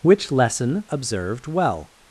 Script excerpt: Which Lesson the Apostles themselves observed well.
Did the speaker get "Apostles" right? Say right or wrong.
wrong